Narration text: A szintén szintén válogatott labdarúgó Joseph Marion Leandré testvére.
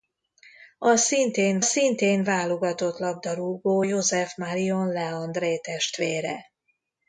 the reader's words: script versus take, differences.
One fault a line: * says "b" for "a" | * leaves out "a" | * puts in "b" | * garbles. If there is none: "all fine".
all fine